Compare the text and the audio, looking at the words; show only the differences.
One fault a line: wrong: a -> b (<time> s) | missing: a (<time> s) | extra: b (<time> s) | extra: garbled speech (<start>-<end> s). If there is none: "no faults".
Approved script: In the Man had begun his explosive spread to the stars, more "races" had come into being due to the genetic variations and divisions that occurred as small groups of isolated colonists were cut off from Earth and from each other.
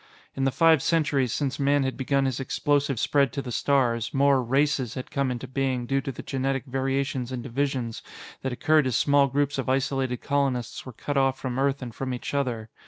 extra: five centuries since (0.5 s)